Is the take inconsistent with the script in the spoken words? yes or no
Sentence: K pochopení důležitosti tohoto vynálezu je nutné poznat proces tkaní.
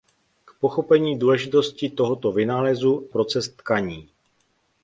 yes